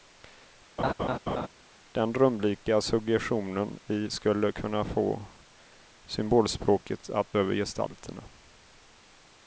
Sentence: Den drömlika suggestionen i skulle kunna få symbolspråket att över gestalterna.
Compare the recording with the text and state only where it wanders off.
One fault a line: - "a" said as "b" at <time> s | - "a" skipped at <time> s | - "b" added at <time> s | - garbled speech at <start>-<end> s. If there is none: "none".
none